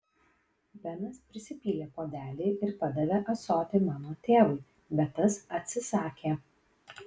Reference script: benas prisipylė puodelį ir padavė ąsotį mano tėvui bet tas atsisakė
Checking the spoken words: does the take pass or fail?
pass